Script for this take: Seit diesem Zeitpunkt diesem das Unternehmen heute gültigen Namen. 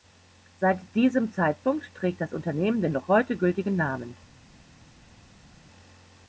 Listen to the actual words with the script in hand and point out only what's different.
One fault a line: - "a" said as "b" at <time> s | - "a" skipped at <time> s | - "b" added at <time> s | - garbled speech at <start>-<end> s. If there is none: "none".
- "diesem" said as "trägt" at 1.9 s
- "den noch" added at 2.8 s